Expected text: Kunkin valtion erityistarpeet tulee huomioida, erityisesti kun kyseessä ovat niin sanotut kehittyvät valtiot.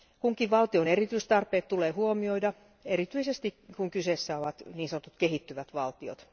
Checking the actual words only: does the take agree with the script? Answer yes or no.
yes